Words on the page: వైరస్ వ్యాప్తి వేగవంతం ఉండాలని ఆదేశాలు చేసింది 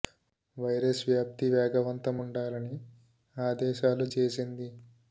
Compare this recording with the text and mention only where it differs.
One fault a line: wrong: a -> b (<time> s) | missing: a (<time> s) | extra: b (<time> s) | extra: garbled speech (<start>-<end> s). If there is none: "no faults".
no faults